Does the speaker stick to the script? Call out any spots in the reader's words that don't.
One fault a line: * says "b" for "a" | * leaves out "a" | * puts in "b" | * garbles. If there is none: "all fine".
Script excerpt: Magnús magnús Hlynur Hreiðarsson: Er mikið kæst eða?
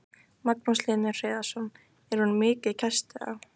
* leaves out "magnús"
* puts in "hún"